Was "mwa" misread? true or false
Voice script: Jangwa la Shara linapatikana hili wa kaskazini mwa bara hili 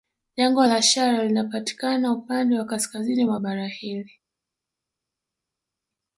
false